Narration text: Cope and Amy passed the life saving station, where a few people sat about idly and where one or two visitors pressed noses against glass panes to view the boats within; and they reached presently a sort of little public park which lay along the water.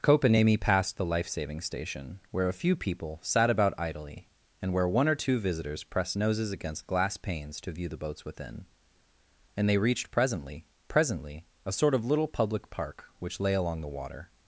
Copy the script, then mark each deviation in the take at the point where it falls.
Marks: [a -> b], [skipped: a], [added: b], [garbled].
Cope and Amy passed the life saving station, where a few people sat about idly and where one or two visitors pressed noses against glass panes to view the boats within; and they reached presently [added: presently] a sort of little public park which lay along the water.